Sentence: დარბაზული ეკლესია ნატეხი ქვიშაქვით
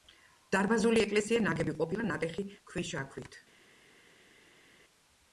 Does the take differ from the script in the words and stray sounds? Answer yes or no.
yes